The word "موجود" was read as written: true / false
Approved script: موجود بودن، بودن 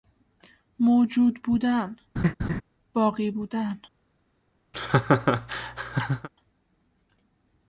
true